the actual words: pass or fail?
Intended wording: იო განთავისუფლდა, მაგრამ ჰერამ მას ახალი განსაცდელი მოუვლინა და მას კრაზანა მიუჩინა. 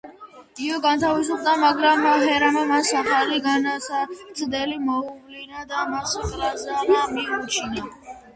pass